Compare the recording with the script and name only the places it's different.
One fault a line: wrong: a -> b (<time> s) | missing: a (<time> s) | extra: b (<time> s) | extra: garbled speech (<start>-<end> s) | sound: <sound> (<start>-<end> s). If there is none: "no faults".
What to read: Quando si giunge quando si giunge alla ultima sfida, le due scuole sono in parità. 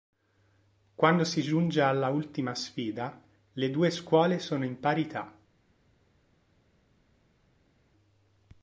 missing: quando si giunge (1.8 s)